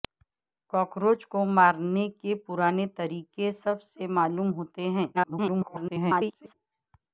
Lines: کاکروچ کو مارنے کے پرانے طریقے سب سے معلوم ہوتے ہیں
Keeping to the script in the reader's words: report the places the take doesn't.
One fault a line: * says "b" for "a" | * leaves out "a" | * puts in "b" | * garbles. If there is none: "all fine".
* garbles